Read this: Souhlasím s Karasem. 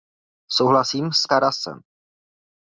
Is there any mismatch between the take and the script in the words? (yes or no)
no